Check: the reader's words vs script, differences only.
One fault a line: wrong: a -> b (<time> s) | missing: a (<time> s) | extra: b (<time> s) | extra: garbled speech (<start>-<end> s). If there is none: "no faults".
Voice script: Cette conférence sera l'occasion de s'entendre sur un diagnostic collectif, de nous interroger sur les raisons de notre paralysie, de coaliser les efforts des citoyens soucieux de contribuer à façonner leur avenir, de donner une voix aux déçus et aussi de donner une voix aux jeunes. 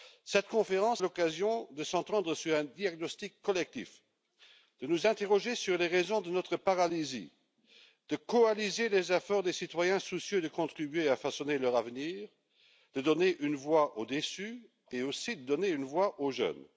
missing: sera (1.0 s)